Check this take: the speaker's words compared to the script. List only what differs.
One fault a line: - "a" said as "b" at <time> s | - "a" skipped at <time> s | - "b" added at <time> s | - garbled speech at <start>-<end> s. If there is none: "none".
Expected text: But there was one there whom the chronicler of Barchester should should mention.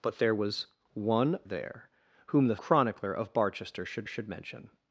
none